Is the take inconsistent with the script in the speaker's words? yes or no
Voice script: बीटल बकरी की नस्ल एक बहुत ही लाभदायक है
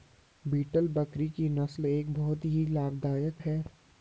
no